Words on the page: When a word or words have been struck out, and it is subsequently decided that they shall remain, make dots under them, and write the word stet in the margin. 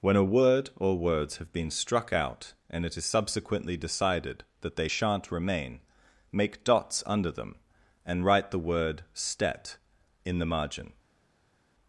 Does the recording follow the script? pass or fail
fail